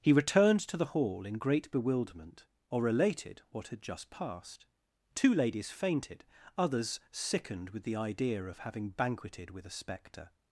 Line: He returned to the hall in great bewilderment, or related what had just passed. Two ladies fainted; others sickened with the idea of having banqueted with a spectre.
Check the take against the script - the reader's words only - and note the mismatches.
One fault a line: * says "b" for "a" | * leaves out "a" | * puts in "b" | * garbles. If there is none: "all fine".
all fine